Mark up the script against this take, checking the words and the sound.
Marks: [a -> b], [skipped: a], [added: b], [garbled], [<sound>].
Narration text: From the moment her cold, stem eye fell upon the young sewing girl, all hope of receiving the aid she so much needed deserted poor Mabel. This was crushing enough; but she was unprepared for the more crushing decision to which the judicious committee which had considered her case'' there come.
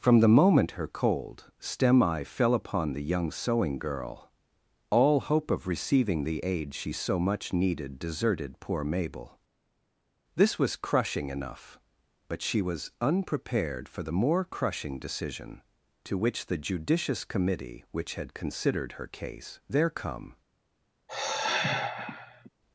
From the moment her cold, stem eye fell upon the young sewing girl, all hope of receiving the aid she so much needed deserted poor Mabel. This was crushing enough; but she was unprepared for the more crushing decision to which the judicious committee which had considered her case'' there come. [sigh]